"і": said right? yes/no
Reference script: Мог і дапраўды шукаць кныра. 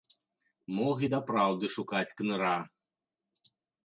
yes